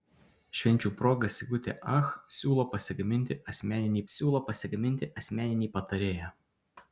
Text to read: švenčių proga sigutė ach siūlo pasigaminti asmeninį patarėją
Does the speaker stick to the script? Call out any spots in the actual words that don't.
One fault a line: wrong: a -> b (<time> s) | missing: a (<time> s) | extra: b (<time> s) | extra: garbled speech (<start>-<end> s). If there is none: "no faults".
extra: siūlo pasigaminti asmeninį (4.1 s)